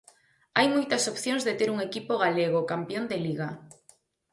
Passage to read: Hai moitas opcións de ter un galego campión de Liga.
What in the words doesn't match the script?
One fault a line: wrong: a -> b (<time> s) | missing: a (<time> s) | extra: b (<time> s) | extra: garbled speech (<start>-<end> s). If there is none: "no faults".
extra: equipo (1.9 s)